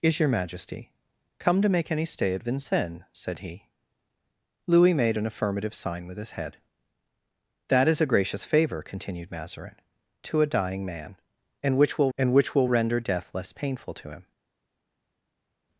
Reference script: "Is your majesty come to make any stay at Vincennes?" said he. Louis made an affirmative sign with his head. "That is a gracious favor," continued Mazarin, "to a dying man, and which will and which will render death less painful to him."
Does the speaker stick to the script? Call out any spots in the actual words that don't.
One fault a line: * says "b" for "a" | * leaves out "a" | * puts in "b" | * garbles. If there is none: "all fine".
all fine